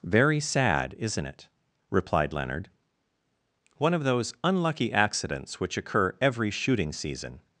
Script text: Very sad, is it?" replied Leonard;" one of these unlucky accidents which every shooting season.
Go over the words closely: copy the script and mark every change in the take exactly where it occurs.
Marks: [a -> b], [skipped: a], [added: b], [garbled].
Very sad, [is -> isn't] it?" replied Leonard;" one of [these -> those] unlucky accidents which [added: occur] every shooting season.